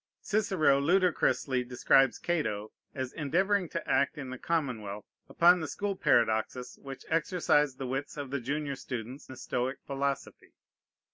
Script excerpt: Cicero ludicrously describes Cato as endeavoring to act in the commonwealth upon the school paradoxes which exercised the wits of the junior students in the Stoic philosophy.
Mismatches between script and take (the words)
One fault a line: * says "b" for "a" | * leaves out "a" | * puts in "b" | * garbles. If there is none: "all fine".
* leaves out "in"